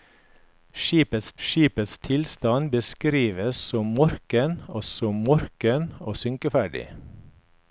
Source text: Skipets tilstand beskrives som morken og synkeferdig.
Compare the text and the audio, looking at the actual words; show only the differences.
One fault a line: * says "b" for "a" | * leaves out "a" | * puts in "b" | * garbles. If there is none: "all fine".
* puts in "skipets"
* puts in "som morken og"